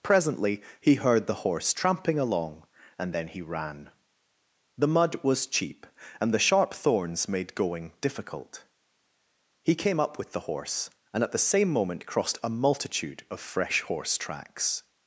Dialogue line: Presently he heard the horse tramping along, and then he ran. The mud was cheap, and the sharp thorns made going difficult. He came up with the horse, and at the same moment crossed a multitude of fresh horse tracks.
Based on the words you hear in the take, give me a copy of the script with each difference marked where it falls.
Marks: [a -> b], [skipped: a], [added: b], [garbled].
Presently he heard the horse tramping along, and then he ran. The mud was cheap, and the sharp thorns made going difficult. He came up with the horse, and at the same moment crossed a multitude of fresh horse tracks.